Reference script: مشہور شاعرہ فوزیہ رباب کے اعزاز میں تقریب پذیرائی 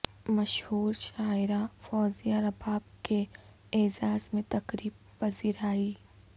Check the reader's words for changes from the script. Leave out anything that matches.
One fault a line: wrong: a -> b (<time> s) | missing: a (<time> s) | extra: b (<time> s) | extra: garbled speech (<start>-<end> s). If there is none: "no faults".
no faults